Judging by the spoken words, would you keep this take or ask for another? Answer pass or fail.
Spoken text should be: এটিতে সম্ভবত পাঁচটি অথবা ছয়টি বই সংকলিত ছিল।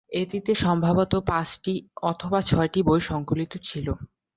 pass